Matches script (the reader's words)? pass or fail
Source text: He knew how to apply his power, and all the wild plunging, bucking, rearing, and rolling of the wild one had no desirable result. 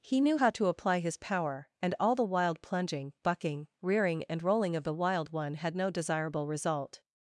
pass